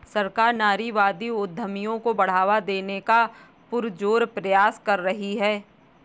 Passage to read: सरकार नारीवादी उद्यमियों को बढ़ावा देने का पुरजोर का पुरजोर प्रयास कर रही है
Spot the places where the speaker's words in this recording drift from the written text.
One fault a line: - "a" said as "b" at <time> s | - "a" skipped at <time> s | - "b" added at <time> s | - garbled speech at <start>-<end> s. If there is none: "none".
- "का पुरजोर" skipped at 4.2 s